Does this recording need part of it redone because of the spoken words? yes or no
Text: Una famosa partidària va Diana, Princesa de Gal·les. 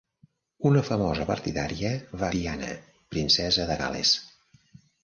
no